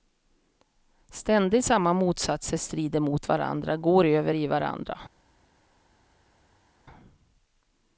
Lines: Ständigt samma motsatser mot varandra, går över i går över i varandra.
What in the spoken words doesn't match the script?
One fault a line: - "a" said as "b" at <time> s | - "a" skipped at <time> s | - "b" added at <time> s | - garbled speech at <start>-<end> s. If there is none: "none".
- "strider" added at 2.6 s
- "går över i" skipped at 4.5 s